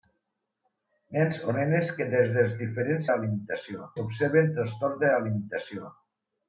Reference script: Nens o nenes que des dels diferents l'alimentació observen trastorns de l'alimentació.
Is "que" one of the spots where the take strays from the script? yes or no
no